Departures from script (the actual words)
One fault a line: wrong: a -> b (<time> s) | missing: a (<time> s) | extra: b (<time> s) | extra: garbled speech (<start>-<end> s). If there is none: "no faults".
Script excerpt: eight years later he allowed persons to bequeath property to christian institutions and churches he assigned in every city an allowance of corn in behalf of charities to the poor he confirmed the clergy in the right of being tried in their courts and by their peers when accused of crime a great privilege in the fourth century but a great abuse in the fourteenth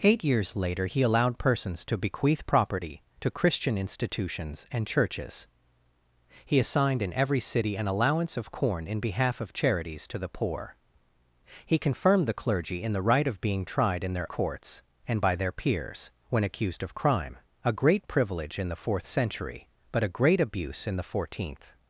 no faults